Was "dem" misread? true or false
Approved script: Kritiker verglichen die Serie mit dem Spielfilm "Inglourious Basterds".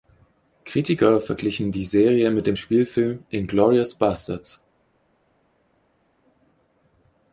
false